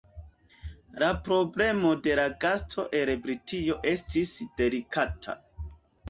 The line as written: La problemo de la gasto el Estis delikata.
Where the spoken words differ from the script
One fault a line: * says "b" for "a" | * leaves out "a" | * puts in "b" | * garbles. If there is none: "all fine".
* puts in "Britio"